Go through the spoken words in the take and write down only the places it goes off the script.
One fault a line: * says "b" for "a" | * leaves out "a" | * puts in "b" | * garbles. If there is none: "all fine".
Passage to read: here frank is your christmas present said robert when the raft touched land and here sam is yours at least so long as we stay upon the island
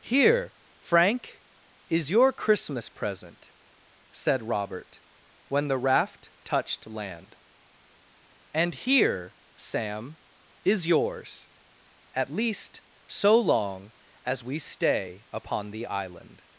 all fine